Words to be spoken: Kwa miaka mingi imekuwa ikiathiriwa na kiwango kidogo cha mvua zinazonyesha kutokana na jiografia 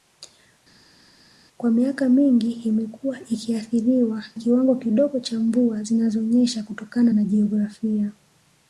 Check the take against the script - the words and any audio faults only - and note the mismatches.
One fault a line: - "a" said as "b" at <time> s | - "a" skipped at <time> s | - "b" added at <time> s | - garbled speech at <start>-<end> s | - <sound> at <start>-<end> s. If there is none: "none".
- "na" skipped at 4.2 s